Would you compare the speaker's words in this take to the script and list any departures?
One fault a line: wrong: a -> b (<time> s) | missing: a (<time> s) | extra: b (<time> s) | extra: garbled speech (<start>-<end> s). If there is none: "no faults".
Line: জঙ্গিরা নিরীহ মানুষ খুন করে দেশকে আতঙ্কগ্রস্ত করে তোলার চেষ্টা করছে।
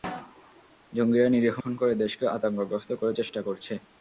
missing: মানুষ (1.6 s)
missing: তোলার (3.1 s)